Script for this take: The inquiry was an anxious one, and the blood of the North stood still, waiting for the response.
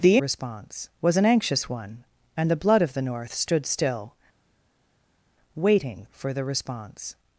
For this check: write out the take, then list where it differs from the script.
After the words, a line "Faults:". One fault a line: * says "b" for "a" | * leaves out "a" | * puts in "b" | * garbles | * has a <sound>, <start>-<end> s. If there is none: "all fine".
The response was an anxious one, and the blood of the North stood still, waiting for the response.
Faults:
* says "response" for "inquiry"